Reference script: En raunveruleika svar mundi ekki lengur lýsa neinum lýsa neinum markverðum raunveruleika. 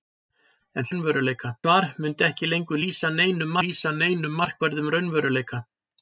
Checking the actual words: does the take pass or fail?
pass